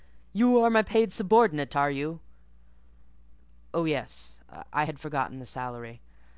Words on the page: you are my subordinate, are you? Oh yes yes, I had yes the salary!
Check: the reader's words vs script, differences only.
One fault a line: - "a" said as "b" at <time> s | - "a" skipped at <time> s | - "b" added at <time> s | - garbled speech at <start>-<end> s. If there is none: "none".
- "paid" added at 0.8 s
- "yes" skipped at 4.4 s
- "yes" said as "forgotten" at 5.0 s